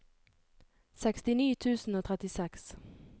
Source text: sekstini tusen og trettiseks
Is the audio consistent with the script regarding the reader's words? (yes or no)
yes